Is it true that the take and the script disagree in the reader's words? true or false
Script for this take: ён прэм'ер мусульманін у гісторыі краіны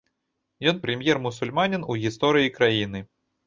false